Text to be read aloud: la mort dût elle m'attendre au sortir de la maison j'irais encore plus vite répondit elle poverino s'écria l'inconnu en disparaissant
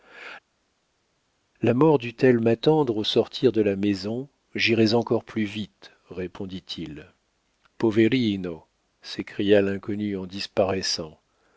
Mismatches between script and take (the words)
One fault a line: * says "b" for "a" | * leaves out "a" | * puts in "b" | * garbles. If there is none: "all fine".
* says "il" for "elle"